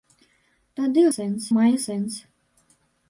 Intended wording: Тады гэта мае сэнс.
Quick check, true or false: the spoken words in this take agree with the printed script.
false